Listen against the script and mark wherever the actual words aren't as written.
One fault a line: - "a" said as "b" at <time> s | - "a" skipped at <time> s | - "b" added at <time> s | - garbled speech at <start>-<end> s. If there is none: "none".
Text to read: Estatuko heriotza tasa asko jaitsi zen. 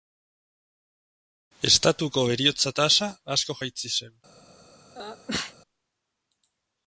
none